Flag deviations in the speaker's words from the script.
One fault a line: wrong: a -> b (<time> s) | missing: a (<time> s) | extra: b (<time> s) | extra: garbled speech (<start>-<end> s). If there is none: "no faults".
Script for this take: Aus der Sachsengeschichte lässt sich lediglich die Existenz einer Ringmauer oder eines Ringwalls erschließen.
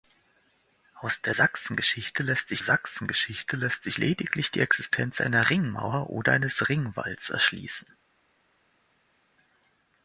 extra: Sachsengeschichte lässt sich (2.6 s)